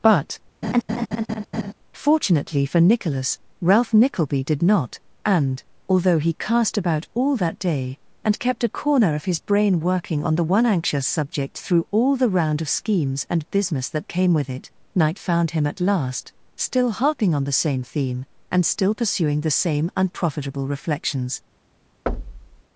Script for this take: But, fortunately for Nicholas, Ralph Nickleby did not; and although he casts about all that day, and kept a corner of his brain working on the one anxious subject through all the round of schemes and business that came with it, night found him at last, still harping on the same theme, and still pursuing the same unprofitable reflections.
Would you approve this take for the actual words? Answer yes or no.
no